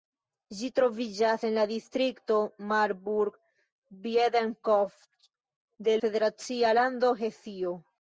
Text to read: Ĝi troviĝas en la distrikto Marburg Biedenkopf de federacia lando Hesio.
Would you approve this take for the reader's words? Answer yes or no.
yes